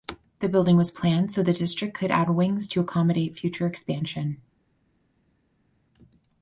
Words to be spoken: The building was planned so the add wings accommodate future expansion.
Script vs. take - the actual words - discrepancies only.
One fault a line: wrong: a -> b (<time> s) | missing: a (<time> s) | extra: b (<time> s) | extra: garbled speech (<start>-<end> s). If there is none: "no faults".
extra: district could (1.5 s)
extra: to (2.7 s)